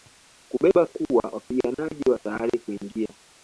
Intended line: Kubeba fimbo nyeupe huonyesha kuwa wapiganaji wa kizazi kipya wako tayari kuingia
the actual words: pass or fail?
fail